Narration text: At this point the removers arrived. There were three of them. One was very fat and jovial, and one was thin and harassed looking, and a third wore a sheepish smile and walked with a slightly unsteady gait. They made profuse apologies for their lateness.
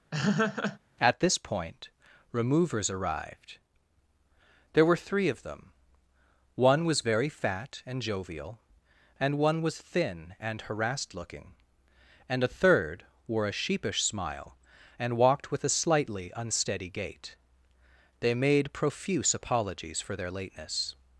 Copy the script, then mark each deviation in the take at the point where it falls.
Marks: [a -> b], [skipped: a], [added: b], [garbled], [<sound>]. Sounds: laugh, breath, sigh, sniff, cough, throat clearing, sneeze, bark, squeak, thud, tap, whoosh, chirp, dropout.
[laugh] At this point [skipped: the] removers arrived. There were three of them. One was very fat and jovial, and one was thin and harassed looking, and a third wore a sheepish smile and walked with a slightly unsteady gait. They made profuse apologies for their lateness.